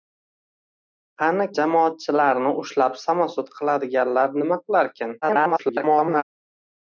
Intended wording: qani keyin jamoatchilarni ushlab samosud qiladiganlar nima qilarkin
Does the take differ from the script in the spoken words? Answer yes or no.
yes